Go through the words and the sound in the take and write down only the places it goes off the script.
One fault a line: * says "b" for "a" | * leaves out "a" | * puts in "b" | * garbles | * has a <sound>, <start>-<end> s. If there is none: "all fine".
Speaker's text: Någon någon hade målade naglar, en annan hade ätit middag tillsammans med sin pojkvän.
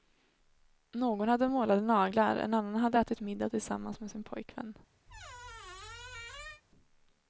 * leaves out "någon"
* has a squeak, 5.1-6.6 s